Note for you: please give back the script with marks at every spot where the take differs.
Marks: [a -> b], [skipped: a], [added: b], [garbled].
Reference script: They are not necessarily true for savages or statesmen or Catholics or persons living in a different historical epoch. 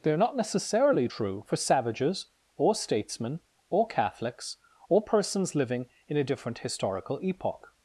They are not necessarily true for savages or statesmen or Catholics or persons living in a different historical epoch.